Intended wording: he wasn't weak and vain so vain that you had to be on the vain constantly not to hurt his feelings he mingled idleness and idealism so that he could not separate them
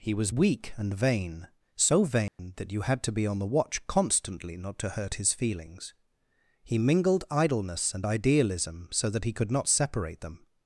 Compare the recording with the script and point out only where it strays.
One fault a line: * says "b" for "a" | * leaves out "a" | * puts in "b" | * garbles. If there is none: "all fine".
* says "was" for "wasn't"
* says "watch" for "vain"